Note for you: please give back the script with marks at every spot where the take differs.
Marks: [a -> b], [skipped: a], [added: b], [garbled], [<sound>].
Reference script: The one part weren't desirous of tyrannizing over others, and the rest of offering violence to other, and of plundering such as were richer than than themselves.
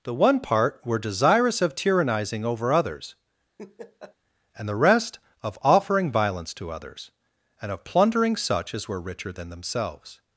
The one part [weren't -> were] desirous of tyrannizing over others, [laugh] and the rest of offering violence to [other, -> others] and of plundering such as were richer than [skipped: than] themselves.